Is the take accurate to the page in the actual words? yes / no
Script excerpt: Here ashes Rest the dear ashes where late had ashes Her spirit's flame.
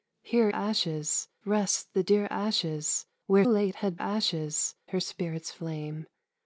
yes